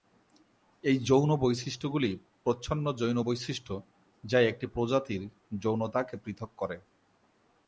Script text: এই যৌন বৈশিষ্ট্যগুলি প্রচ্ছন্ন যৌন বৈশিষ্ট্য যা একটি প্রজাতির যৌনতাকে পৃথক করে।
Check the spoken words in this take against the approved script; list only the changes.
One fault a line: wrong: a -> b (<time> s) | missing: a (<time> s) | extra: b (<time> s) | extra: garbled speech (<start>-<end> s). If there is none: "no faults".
no faults